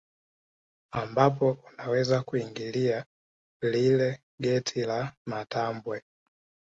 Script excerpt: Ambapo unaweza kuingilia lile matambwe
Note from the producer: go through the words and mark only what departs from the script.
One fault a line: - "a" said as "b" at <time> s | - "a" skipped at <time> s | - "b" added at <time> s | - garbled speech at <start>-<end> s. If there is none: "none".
- "geti la" added at 4.4 s